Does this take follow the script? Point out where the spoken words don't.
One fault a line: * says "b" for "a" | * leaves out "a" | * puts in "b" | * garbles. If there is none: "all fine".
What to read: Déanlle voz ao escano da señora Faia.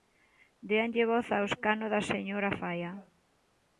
all fine